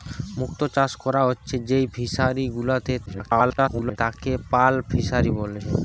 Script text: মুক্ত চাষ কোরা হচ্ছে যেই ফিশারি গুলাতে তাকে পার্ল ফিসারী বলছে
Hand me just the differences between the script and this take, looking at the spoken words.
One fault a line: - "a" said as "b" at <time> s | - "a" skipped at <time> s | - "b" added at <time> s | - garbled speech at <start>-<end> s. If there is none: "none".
- garbled speech at 3.1-4.0 s